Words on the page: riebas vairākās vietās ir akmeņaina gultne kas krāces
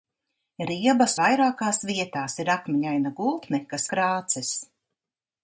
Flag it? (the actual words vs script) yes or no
no